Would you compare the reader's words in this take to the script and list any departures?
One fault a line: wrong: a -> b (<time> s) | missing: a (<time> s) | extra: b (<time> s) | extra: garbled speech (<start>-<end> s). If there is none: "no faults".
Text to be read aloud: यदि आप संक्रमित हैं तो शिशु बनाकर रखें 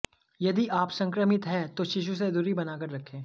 extra: से दूरी (2.1 s)